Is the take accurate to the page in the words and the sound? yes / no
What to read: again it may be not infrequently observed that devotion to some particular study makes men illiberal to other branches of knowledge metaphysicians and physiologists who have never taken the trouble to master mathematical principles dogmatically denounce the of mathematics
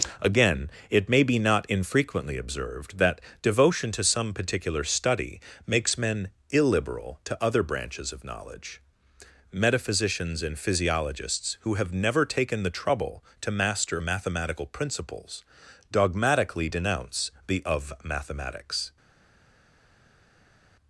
yes